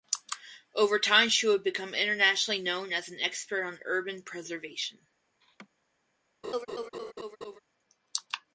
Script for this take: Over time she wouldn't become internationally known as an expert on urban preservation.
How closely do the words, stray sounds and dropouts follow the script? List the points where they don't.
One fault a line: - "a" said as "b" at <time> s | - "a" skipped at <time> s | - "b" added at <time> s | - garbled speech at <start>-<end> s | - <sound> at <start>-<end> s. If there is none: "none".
- "wouldn't" said as "would" at 1.4 s
- laugh at 5.4-5.7 s
- laugh at 6.4-7.6 s